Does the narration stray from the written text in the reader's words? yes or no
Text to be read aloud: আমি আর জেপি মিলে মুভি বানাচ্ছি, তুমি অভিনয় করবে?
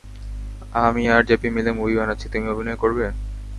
no